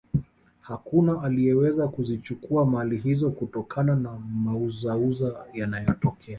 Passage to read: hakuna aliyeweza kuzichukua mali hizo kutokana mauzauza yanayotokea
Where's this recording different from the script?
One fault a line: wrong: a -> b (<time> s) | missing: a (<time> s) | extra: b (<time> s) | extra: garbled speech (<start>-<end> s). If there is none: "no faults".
extra: na (4.0 s)